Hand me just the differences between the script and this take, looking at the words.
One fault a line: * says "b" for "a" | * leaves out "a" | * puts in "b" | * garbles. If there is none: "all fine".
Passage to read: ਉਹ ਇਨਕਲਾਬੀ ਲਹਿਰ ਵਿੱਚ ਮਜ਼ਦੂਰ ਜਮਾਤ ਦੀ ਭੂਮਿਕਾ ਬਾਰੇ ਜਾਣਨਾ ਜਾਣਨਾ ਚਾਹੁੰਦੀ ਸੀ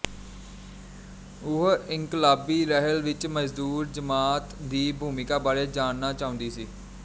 * leaves out "ਜਾਣਨਾ"